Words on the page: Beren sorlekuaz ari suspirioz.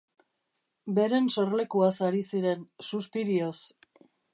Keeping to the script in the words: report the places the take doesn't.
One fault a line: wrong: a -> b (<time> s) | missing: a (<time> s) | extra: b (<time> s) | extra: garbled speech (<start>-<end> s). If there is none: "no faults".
extra: ziren (2.3 s)